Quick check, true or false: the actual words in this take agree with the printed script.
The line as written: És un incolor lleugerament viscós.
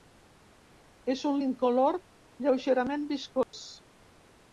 true